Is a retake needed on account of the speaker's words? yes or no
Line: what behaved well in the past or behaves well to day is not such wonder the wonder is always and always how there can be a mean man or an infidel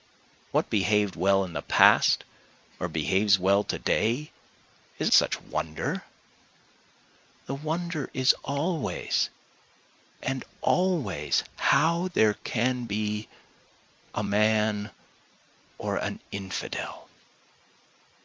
yes